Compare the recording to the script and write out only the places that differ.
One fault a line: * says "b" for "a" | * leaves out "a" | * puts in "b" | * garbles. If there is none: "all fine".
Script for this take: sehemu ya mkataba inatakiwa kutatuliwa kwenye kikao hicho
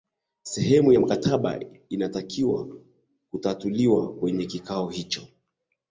all fine